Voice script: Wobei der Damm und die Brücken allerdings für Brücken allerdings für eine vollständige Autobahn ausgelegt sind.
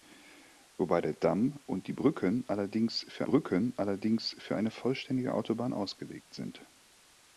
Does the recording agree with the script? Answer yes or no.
yes